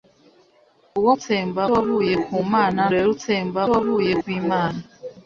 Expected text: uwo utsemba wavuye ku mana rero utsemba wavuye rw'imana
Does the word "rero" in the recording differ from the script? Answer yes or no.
no